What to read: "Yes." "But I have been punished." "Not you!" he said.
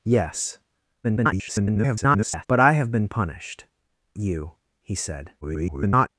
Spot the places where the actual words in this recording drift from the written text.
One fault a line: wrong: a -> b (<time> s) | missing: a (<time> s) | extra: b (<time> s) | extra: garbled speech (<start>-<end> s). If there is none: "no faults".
extra: garbled speech (1.0-2.5 s)
missing: Not (3.7 s)
extra: garbled speech (5.4-6.1 s)